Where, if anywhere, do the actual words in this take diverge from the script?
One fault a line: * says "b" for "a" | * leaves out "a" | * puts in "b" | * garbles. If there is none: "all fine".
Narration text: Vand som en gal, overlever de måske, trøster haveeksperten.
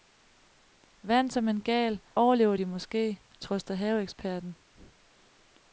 all fine